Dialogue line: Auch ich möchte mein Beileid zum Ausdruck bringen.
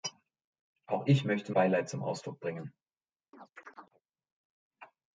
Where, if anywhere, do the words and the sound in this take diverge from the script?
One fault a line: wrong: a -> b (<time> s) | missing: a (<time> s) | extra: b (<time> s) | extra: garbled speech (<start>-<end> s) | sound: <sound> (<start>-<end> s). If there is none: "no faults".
missing: mein (1.5 s)
sound: chirp (3.3-4.0 s)